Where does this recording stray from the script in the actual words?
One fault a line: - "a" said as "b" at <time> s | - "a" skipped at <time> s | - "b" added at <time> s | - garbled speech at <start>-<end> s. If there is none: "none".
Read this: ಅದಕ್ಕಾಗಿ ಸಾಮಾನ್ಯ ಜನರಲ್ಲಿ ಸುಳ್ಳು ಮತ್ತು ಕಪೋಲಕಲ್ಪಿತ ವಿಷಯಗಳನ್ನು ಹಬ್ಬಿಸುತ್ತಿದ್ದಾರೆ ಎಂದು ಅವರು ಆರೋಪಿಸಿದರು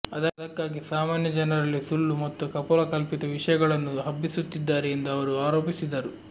none